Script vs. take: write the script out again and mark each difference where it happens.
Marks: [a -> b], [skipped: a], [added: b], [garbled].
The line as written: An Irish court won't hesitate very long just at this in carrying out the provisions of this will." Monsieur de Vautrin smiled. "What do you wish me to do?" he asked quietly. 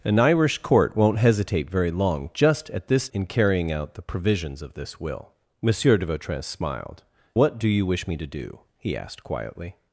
An Irish court won't hesitate very long just at this in carrying out the provisions of this will." Monsieur de Vautrin smiled. "What do you wish me to do?" he asked quietly.